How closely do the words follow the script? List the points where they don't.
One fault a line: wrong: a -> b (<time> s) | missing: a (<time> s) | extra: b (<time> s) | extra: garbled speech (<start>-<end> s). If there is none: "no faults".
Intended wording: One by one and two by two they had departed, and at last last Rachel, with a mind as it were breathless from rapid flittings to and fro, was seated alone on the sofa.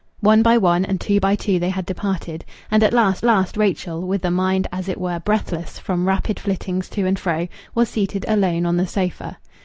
no faults